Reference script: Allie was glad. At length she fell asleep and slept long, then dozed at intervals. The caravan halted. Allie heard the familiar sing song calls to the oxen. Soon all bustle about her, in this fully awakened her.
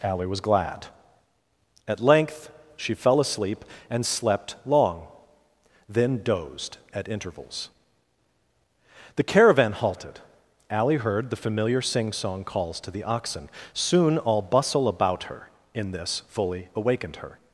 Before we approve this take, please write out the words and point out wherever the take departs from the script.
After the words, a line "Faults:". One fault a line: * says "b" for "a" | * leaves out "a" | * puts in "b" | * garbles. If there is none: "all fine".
Allie was glad. At length she fell asleep and slept long, then dozed at intervals. The caravan halted. Allie heard the familiar sing song calls to the oxen. Soon all bustle about her, in this fully awakened her.
Faults:
all fine